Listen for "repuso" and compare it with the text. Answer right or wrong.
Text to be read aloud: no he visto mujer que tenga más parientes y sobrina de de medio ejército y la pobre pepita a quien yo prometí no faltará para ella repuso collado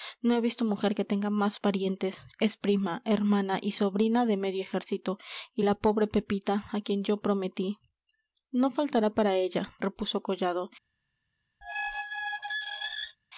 right